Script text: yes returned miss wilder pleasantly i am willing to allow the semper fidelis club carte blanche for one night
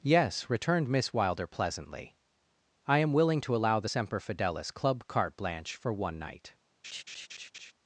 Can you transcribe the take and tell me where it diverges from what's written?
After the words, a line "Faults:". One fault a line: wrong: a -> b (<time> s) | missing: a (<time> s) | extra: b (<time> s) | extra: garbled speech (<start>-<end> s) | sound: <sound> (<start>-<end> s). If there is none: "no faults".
yes returned miss wilder pleasantly i am willing to allow the semper fidelis club carte blanche for one night
Faults:
sound: laugh (6.8-7.7 s)